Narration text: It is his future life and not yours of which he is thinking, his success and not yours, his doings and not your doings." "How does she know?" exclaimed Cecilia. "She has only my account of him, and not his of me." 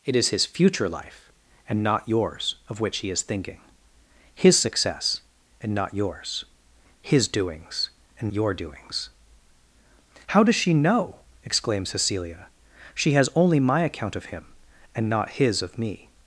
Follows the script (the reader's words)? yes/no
no